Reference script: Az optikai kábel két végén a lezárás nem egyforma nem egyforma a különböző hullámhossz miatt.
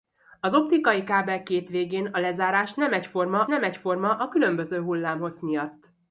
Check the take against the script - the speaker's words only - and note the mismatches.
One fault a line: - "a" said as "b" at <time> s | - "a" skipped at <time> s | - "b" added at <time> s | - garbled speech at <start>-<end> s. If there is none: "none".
none